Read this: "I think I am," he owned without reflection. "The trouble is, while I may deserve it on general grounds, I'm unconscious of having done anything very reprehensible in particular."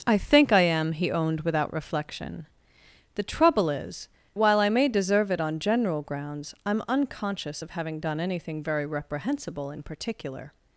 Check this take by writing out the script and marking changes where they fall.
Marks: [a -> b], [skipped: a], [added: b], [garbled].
"I think I am," he owned without reflection. "The trouble is, while I may deserve it on general grounds, I'm unconscious of having done anything very reprehensible in particular."